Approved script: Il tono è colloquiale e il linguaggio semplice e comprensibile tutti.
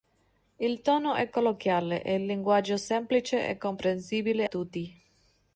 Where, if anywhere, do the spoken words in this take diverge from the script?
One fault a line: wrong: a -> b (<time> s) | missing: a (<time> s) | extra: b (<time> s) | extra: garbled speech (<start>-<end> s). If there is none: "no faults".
no faults